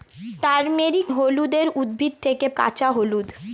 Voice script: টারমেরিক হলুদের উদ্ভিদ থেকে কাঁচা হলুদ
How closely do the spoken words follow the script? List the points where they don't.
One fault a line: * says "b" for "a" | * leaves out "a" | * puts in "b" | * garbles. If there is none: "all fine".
all fine